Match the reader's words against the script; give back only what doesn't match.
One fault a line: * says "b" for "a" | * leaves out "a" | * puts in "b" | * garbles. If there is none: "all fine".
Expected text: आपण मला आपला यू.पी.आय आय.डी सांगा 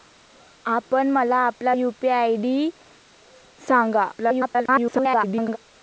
* garbles